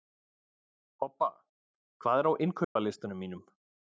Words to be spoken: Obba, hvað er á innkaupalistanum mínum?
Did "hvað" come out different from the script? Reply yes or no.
no